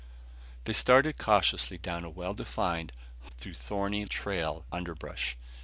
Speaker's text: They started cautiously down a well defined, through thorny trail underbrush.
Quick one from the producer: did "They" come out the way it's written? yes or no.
yes